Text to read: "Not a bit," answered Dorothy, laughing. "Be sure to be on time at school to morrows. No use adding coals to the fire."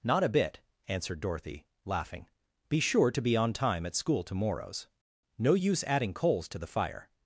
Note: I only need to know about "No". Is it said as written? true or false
true